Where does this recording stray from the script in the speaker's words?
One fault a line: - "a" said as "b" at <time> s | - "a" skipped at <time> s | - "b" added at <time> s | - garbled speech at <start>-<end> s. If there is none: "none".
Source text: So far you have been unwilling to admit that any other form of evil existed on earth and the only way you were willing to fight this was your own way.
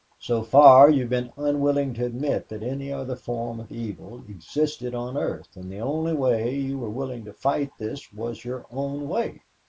none